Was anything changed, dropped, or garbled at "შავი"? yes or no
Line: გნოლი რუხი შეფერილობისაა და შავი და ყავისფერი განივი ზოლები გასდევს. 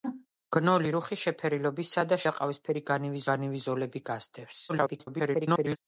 yes